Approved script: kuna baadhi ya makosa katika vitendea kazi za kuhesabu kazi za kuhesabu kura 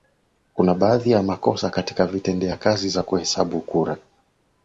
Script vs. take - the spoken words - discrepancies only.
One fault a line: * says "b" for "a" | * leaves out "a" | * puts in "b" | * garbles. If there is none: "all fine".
* leaves out "kazi za kuhesabu"